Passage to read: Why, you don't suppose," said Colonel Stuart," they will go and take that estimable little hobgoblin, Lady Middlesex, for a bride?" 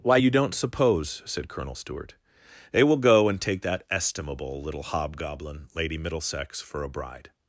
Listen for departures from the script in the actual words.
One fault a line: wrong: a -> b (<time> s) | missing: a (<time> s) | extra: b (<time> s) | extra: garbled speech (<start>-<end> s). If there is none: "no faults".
no faults